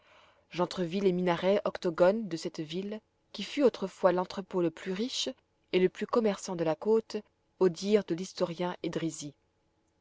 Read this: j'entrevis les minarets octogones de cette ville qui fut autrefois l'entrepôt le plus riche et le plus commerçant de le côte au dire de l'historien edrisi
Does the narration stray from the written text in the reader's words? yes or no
yes